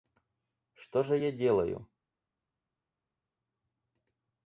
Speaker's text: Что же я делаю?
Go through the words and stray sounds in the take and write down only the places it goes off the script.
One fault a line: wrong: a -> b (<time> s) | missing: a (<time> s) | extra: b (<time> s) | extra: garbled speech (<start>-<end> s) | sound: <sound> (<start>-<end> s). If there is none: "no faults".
no faults